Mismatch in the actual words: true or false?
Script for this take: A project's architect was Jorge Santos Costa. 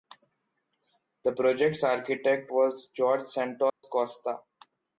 true